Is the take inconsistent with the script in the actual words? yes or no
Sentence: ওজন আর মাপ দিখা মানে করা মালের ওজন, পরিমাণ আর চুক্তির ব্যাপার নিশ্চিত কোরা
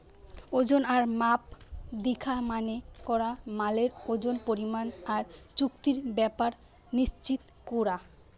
no